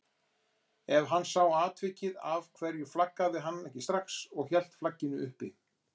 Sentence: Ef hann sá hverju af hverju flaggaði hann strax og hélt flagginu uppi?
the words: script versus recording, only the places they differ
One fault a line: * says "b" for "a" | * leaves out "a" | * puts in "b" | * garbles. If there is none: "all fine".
* says "atvikið" for "hverju"
* puts in "ekki"